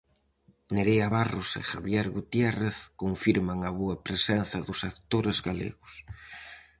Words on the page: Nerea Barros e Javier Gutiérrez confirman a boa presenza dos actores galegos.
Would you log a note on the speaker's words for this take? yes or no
no